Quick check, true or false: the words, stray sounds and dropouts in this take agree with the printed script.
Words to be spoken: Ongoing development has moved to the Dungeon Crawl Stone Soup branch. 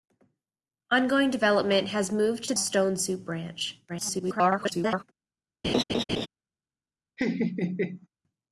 false